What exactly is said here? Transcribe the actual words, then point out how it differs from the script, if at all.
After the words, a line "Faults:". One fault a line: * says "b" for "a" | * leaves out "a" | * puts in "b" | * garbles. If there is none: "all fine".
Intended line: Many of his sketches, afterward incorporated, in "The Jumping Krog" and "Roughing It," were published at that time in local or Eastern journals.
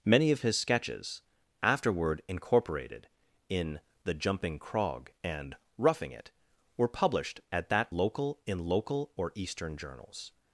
Many of his sketches, afterward incorporated, in "The Jumping Krog" and "Roughing It," were published at that local in local or Eastern journals.
Faults:
* says "local" for "time"